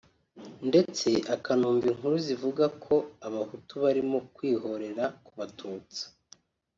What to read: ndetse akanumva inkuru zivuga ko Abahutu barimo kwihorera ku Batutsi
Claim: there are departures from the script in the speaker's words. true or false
false